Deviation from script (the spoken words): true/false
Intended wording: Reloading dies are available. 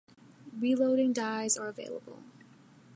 false